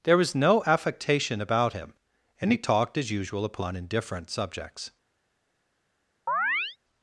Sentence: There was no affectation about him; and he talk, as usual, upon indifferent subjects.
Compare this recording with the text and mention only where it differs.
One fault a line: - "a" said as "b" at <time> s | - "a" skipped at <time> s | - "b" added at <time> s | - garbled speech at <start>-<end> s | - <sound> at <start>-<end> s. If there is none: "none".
- "talk" said as "talked" at 2.6 s
- chirp at 6.3-6.8 s